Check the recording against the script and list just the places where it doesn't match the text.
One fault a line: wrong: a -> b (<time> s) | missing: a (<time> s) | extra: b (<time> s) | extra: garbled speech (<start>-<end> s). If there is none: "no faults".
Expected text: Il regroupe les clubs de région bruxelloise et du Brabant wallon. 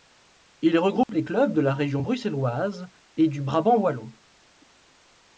extra: la (1.6 s)